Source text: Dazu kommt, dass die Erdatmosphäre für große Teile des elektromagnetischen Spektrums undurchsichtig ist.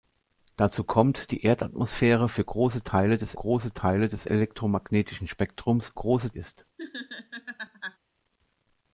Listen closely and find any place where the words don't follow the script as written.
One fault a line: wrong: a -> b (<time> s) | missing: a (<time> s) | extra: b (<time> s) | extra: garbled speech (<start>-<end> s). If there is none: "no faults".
missing: dass (1.3 s)
extra: große Teile des (3.3 s)
wrong: undurchsichtig -> große (5.9 s)